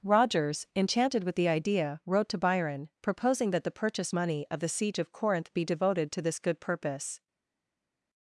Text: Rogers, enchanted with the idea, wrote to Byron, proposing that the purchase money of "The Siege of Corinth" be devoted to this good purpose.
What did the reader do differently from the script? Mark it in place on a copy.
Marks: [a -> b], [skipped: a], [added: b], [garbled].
Rogers, enchanted with the idea, wrote to Byron, proposing that the purchase money of "The Siege of Corinth" be devoted to this good purpose.